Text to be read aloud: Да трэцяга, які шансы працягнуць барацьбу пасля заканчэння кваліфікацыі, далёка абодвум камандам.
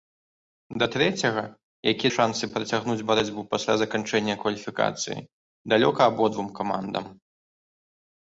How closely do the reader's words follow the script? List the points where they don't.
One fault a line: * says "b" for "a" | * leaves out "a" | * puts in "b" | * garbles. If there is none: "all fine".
all fine